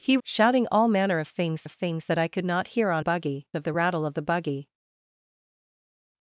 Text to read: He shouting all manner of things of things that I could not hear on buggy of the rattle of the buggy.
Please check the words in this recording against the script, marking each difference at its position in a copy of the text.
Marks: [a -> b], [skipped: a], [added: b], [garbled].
He shouting all manner of things of things that I could not hear on buggy of the rattle of the buggy.